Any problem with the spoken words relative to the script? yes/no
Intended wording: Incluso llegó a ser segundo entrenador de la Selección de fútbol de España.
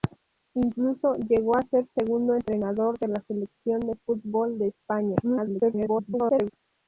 yes